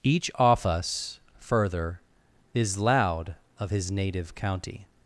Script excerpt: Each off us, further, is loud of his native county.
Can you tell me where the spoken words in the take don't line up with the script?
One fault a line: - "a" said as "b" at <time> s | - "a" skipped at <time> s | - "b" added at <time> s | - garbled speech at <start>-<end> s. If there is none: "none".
none